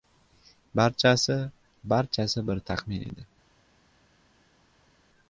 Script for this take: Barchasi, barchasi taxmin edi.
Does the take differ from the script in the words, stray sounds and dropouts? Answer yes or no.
yes